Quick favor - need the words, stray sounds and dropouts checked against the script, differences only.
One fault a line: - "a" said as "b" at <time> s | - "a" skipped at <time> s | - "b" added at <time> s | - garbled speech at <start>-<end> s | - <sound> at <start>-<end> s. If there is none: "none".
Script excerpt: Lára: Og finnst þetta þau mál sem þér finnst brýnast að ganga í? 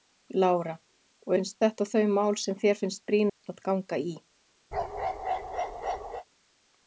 - dropout at 3.3-3.4 s
- bark at 4.7-6.2 s